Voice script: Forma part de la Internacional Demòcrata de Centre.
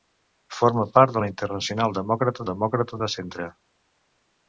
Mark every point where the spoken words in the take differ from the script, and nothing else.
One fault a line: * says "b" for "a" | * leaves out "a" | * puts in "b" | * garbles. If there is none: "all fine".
* puts in "Demòcrata"